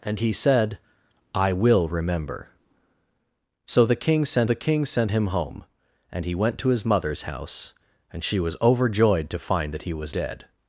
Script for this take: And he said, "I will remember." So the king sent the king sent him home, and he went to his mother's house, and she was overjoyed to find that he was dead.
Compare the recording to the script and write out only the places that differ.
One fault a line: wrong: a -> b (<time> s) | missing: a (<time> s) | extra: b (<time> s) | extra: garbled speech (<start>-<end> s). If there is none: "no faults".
no faults